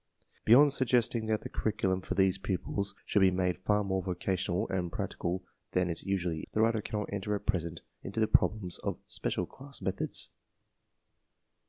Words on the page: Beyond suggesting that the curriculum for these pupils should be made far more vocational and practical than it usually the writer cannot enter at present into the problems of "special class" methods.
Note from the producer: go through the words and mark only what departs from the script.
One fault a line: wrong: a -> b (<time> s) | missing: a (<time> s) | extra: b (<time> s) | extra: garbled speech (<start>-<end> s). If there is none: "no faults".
no faults